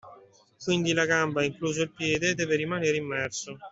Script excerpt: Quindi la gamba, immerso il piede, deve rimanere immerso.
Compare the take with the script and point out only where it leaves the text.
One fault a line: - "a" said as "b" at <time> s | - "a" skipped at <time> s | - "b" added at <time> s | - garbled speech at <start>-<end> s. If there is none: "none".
- "immerso" said as "incluso" at 1.4 s